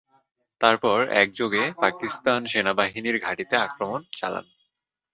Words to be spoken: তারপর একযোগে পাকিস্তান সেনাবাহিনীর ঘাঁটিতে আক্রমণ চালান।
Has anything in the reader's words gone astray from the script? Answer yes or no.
no